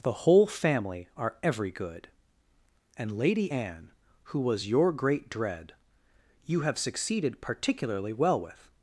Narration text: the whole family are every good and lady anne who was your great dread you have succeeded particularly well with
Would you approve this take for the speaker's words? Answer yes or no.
yes